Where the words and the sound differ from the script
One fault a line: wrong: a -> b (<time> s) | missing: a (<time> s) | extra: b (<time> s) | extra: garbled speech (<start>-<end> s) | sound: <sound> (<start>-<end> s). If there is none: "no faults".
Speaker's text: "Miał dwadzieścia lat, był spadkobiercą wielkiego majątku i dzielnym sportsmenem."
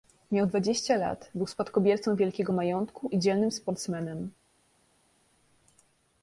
no faults